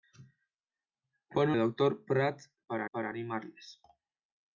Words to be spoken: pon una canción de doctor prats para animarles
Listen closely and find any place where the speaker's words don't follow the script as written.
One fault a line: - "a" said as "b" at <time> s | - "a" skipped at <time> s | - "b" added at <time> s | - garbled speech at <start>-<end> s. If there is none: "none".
- "una canción de" skipped at 1.5 s
- "para" added at 2.9 s